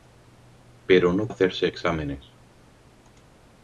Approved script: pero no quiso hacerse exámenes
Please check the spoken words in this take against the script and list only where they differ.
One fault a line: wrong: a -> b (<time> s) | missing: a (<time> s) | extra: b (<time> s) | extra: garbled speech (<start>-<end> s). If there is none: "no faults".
missing: quiso (1.3 s)